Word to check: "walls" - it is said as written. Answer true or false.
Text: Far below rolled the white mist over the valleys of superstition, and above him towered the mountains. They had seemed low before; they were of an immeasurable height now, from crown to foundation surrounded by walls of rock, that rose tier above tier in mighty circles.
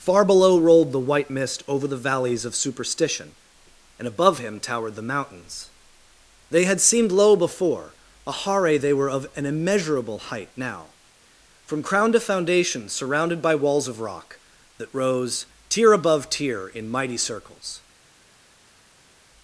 true